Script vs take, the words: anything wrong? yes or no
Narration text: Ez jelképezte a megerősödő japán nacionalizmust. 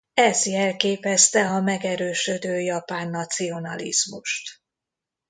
no